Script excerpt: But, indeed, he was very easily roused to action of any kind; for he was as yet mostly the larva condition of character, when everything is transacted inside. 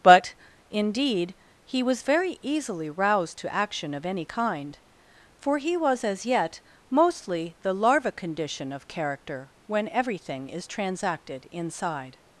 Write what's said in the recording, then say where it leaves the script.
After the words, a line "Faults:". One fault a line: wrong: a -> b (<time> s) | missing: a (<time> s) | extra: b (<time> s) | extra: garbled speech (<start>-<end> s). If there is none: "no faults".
But, indeed, he was very easily roused to action of any kind; for he was as yet mostly the larva condition of character, when everything is transacted inside.
Faults:
no faults